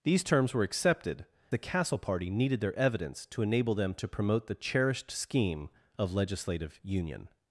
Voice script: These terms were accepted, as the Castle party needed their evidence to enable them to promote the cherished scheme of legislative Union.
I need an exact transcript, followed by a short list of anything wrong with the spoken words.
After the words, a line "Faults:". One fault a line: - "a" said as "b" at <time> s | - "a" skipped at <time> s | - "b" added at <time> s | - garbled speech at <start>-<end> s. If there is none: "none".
These terms were accepted, the Castle party needed their evidence to enable them to promote the cherished scheme of legislative Union.
Faults:
- "as" skipped at 1.3 s